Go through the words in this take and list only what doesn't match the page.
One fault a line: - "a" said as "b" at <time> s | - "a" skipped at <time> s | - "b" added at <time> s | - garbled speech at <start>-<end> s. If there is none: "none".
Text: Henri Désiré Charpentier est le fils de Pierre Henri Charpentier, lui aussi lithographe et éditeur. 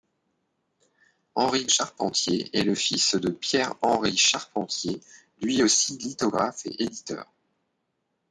- "Désiré" skipped at 1.7 s